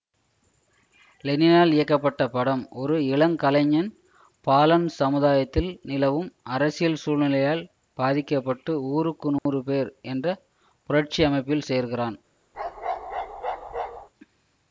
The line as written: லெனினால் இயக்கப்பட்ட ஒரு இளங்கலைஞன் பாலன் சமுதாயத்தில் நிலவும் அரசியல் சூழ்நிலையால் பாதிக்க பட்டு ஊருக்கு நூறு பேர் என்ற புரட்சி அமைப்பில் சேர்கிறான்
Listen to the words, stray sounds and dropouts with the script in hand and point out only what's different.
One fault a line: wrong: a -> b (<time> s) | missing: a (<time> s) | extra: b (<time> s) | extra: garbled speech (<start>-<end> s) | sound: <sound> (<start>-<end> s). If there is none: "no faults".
extra: படம் (2.3 s)
sound: dropout (9.4-9.5 s)
sound: bark (12.5-14.1 s)